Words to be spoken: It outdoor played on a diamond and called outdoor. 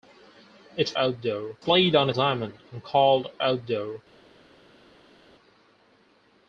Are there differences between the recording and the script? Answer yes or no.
no